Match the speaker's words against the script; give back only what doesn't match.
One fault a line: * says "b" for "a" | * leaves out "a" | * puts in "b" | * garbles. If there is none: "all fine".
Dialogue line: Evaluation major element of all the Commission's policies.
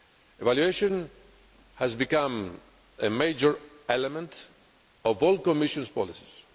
* puts in "has become a"